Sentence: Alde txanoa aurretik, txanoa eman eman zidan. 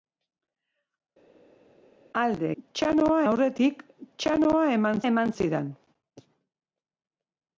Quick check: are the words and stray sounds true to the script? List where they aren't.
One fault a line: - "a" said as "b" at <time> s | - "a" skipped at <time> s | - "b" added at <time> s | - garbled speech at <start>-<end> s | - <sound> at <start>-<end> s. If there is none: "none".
none